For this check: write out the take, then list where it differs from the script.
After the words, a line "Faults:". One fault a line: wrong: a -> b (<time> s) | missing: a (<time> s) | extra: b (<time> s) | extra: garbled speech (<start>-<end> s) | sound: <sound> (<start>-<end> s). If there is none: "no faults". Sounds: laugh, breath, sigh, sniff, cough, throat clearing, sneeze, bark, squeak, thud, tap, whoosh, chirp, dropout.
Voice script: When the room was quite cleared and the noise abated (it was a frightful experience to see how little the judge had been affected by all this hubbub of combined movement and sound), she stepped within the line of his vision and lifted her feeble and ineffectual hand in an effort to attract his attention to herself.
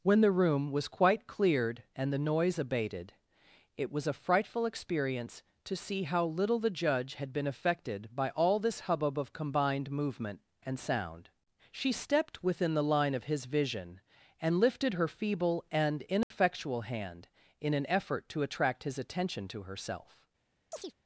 When the room was quite cleared and the noise abated (it was a frightful experience to see how little the judge had been affected by all this hubbub of combined movement and sound), she stepped within the line of his vision and lifted her feeble and ineffectual hand in an effort to attract his attention to herself.
Faults:
sound: dropout (16.2-16.3 s)
sound: chirp (20.7-20.9 s)